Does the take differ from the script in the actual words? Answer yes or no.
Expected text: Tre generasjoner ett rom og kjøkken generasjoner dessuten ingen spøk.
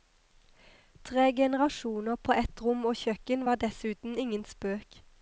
yes